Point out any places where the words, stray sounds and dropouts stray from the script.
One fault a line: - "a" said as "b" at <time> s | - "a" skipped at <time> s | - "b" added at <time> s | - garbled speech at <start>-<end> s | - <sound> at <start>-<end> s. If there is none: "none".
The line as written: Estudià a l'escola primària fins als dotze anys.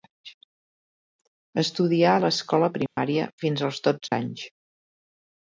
- dropout at 2.9-3.0 s
- dropout at 4.1-4.1 s